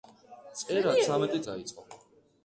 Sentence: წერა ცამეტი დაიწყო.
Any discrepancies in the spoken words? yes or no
no